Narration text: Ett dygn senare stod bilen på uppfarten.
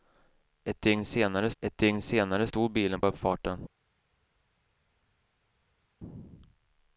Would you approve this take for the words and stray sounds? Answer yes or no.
no